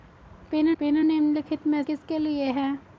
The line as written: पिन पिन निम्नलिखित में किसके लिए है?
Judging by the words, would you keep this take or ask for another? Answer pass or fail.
pass